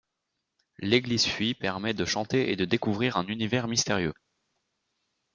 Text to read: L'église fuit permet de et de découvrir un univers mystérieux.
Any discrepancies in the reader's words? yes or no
yes